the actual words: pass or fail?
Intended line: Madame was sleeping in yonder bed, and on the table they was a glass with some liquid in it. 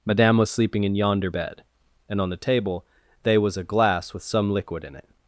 pass